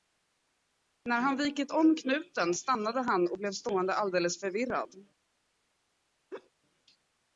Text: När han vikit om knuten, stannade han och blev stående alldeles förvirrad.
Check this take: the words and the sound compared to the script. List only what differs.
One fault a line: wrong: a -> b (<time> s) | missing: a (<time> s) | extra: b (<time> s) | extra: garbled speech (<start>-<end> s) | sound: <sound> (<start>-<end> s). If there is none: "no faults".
sound: laugh (6.3-6.5 s)